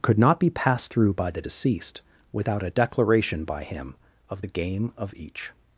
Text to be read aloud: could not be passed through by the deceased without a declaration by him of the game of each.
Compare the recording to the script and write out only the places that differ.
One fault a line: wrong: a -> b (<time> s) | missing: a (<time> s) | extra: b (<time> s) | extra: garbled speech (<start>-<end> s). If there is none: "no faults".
no faults